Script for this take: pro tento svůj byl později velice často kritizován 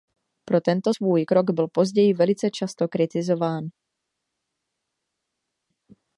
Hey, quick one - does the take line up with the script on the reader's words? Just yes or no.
no